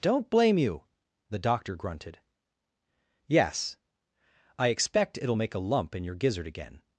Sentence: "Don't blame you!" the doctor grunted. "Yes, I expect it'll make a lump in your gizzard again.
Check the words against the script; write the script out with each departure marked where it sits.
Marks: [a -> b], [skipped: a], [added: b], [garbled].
"Don't blame you!" the doctor grunted. "Yes, I expect it'll make a lump in your gizzard again.